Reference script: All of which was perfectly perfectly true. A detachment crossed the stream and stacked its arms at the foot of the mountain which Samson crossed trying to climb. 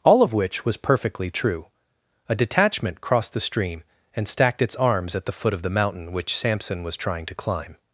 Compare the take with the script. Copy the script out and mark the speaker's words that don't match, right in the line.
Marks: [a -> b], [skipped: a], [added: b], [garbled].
All of which was perfectly [skipped: perfectly] true. A detachment crossed the stream and stacked its arms at the foot of the mountain which Samson [crossed -> was] trying to climb.